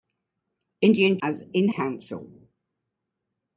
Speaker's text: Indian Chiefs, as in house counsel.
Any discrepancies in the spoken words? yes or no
yes